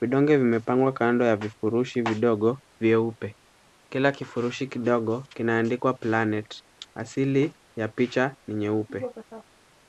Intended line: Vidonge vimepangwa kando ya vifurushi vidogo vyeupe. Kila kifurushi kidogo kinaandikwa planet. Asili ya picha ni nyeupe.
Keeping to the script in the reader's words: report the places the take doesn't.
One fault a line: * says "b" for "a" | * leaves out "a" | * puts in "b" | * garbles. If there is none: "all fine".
all fine